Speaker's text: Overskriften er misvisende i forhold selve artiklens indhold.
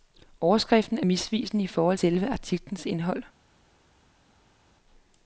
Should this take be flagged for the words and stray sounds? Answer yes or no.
no